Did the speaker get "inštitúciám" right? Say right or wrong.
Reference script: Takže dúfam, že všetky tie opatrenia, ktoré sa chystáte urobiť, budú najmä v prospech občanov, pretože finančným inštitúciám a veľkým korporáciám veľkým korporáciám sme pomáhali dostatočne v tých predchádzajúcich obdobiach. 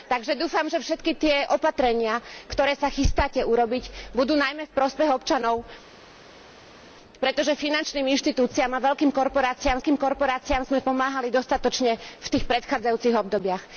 right